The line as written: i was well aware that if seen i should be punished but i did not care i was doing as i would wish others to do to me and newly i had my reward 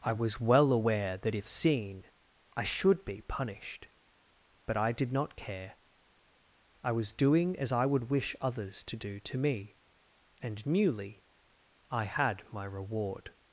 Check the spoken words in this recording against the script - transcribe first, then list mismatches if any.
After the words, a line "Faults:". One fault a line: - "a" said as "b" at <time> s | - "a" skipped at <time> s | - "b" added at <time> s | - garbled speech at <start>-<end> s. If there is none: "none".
i was well aware that if seen i should be punished but i did not care i was doing as i would wish others to do to me and newly i had my reward
Faults:
none